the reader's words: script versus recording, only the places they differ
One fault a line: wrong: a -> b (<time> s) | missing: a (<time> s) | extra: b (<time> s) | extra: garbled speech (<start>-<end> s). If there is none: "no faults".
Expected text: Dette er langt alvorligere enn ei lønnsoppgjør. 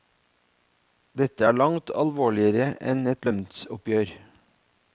wrong: ei -> et (3.1 s)